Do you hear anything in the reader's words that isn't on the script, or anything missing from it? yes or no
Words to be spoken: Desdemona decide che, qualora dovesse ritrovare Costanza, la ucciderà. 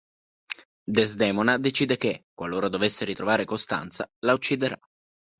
no